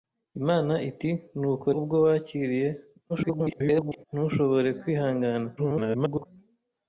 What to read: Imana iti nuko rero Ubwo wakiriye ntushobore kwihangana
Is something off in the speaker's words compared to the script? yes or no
yes